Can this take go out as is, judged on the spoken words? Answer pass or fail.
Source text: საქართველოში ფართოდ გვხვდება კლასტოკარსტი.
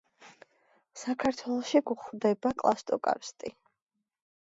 fail